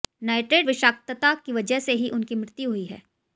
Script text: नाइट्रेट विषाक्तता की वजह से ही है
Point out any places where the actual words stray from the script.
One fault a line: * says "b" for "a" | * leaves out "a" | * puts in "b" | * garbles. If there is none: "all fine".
* puts in "उनकी मृत्यु हुई"